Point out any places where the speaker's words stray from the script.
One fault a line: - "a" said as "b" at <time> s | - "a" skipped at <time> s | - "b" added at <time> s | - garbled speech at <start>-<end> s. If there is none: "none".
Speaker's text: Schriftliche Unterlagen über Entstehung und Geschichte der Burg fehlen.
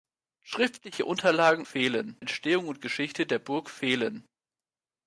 - "über" said as "fehlen" at 1.6 s